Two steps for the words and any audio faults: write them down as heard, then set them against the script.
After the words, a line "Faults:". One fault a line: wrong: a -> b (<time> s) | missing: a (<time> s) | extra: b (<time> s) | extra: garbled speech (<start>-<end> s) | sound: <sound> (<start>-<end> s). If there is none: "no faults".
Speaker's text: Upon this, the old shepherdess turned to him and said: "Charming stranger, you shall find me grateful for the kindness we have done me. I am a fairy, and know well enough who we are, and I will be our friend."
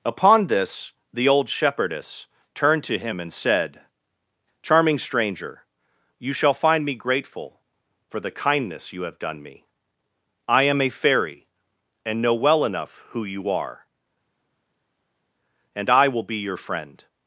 Upon this, the old shepherdess turned to him and said: "Charming stranger, you shall find me grateful for the kindness you have done me. I am a fairy, and know well enough who you are, and I will be your friend."
Faults:
wrong: we -> you (8.9 s)
wrong: we -> you (13.2 s)
wrong: our -> your (16.4 s)